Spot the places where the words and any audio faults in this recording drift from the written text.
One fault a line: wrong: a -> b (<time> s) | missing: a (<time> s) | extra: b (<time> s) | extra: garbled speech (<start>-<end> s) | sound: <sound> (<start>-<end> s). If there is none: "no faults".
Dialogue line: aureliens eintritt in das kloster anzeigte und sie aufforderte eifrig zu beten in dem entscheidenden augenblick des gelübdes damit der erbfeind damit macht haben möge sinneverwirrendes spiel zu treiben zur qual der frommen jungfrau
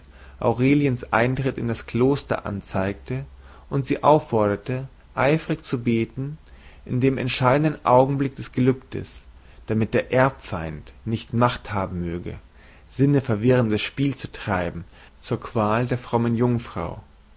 wrong: damit -> nicht (11.1 s)